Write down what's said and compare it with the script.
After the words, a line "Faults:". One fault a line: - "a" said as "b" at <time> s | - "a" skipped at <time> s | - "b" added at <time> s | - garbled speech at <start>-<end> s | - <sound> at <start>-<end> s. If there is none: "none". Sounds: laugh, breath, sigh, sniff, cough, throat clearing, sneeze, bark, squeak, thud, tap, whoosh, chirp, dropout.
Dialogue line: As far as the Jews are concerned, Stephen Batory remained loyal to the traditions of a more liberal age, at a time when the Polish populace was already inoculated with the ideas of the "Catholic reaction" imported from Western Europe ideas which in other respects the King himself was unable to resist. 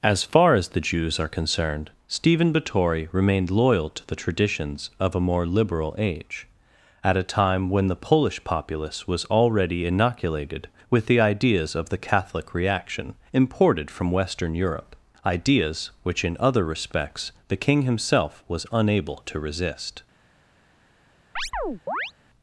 As far as the Jews are concerned, Stephen Batory remained loyal to the traditions of a more liberal age, at a time when the Polish populace was already inoculated with the ideas of the "Catholic reaction" imported from Western Europe ideas which in other respects the King himself was unable to resist.
Faults:
- chirp at 21.4-22.1 s